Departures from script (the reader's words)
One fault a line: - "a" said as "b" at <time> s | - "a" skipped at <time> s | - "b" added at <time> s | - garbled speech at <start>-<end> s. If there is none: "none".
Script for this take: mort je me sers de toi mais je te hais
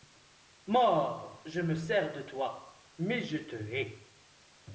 none